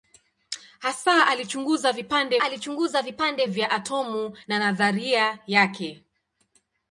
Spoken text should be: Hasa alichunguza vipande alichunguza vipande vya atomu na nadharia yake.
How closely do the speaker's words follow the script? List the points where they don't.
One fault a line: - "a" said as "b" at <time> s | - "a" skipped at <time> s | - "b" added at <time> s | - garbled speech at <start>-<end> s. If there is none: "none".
none